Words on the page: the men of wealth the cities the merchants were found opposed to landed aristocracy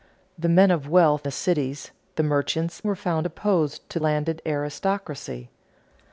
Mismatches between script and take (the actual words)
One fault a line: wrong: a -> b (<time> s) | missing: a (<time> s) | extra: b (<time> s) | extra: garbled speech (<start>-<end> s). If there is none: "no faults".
no faults